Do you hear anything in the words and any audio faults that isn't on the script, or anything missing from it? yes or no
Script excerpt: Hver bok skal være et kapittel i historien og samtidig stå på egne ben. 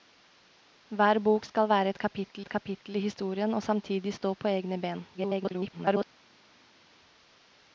yes